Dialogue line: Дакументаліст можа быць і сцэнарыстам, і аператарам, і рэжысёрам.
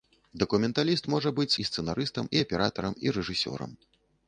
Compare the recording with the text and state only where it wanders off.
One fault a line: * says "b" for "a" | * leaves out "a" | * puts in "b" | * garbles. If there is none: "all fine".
all fine